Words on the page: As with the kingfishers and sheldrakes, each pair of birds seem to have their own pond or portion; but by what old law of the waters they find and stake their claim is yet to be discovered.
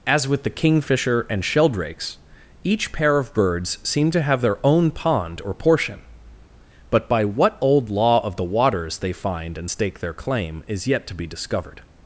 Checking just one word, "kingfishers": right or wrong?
wrong